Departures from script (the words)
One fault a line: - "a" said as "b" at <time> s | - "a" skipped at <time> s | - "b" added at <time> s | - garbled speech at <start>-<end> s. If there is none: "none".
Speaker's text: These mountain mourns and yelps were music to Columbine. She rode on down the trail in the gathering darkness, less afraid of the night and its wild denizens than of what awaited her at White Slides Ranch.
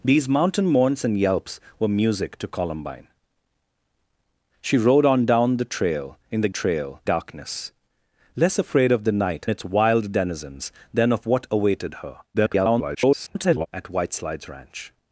- "gathering" said as "trail" at 6.5 s
- "and" skipped at 9.5 s
- garbled speech at 12.3-13.7 s